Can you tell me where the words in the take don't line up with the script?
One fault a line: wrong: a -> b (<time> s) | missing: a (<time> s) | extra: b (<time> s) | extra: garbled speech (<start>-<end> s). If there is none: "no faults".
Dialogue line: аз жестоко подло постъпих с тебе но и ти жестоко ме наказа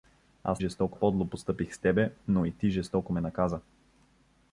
no faults